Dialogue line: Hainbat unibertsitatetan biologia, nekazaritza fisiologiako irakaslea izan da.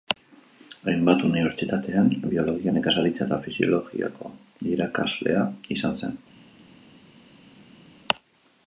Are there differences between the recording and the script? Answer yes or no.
yes